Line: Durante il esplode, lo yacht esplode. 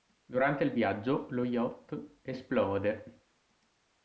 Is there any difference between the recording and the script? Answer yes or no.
yes